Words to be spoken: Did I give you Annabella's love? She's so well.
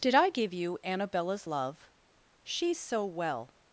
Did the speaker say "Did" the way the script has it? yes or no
yes